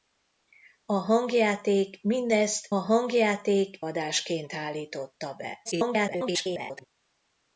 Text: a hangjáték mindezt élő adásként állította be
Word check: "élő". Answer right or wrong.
wrong